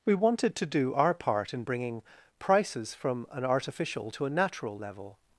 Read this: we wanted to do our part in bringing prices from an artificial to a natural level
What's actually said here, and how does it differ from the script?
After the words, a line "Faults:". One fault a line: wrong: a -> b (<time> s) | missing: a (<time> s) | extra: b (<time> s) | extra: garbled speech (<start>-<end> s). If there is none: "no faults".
we wanted to do our part in bringing prices from an artificial to a natural level
Faults:
no faults